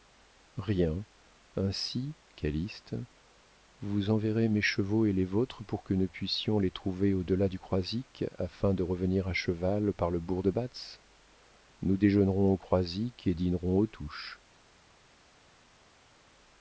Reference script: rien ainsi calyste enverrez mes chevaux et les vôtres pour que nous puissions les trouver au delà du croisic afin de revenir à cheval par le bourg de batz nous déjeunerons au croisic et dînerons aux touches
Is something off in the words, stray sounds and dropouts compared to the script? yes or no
yes